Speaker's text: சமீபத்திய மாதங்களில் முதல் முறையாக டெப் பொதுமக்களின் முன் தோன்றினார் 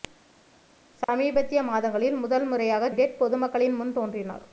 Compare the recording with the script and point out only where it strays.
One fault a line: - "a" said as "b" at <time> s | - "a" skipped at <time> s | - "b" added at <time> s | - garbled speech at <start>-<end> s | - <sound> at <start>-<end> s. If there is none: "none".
none